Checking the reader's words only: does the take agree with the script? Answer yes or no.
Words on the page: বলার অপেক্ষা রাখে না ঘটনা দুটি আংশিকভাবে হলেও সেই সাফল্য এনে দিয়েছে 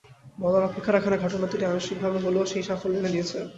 yes